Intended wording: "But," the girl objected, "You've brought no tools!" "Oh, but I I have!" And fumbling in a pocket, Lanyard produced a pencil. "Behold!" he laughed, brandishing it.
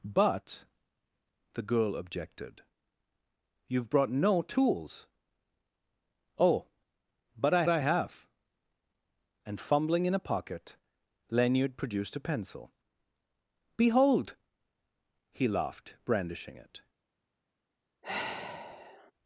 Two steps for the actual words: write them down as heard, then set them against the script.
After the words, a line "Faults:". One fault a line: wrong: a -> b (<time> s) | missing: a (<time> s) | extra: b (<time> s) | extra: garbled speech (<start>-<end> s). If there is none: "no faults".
"But," the girl objected, "You've brought no tools!" "Oh, but I I have!" And fumbling in a pocket, Lanyard produced a pencil. "Behold!" he laughed, brandishing it.
Faults:
no faults